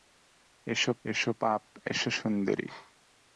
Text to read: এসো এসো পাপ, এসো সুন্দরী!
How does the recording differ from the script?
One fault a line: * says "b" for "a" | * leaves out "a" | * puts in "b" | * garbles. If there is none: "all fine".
all fine